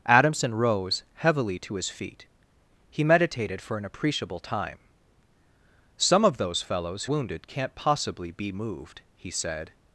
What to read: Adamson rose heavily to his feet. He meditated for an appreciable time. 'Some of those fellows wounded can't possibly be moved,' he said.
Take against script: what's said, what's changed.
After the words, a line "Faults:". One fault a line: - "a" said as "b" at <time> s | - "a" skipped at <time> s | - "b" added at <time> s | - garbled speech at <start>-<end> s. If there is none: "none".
Adamson rose heavily to his feet. He meditated for an appreciable time. 'Some of those fellows wounded can't possibly be moved,' he said.
Faults:
none